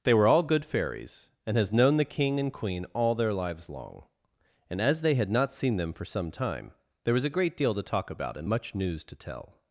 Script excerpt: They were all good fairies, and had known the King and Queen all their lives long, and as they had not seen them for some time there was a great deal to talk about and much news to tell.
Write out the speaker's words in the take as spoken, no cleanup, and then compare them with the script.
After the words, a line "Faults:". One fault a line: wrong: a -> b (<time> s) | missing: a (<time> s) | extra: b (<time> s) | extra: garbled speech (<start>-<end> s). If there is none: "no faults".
They were all good fairies, and has known the King and Queen all their lives long, and as they had not seen them for some time there was a great deal to talk about and much news to tell.
Faults:
wrong: had -> has (1.6 s)